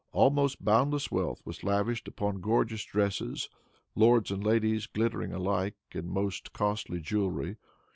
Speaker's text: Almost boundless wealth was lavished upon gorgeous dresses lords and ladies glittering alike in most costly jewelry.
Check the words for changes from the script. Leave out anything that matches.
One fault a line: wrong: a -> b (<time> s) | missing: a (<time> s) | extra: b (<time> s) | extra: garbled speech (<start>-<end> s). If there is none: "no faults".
no faults